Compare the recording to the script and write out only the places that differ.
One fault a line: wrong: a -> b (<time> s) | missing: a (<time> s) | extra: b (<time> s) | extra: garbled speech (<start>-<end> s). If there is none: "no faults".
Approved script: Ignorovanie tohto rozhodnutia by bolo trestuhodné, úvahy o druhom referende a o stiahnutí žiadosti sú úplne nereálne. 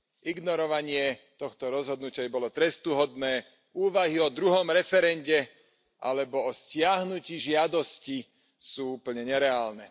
wrong: a -> alebo (6.0 s)